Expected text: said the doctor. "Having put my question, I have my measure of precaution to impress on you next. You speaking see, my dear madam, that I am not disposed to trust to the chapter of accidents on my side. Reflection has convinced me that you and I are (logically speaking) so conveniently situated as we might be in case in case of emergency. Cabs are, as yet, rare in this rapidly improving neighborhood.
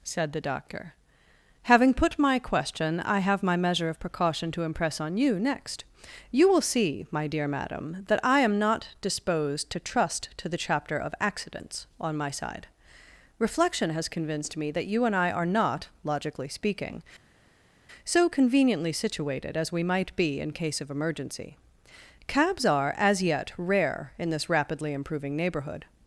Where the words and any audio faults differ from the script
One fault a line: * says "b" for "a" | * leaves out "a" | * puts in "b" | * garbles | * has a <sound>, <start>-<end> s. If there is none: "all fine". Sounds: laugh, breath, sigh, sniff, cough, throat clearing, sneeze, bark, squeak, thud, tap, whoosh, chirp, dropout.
* says "will" for "speaking"
* puts in "not"
* leaves out "in case"